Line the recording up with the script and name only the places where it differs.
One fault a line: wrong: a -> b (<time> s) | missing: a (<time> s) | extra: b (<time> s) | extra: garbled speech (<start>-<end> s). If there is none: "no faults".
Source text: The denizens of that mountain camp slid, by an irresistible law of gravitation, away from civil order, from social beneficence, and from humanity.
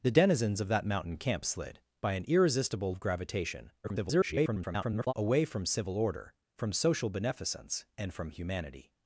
missing: law (3.0 s)
extra: garbled speech (3.8-5.1 s)